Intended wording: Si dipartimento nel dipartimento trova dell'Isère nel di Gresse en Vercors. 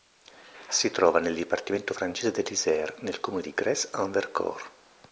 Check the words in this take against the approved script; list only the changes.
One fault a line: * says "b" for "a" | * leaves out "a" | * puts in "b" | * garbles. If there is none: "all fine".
* says "trova" for "dipartimento"
* says "francese" for "trova"
* puts in "comune"